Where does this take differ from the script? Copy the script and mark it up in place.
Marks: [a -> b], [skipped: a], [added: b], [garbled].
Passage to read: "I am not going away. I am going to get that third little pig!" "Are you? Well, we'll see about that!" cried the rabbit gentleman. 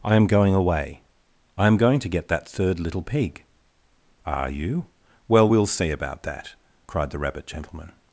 "I am [skipped: not] going away. I am going to get that third little pig!" "Are you? Well, we'll see about that!" cried the rabbit gentleman.